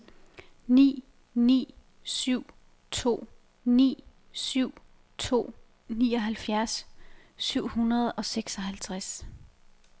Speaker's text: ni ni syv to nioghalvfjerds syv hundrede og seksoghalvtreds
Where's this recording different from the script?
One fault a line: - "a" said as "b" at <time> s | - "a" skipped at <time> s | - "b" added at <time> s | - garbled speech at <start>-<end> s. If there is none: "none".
- "ni syv to" added at 3.6 s